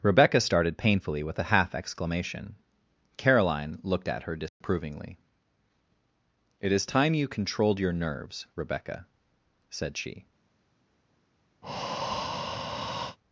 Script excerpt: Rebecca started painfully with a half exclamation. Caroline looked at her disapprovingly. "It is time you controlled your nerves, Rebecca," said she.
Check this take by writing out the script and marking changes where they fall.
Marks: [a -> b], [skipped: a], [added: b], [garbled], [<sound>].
Rebecca started painfully with a half exclamation. Caroline looked at her disapprovingly. [dropout] "It is time you controlled your nerves, Rebecca," said she. [breath]